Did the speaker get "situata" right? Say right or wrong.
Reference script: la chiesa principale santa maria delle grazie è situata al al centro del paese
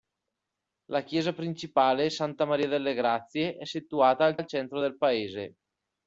right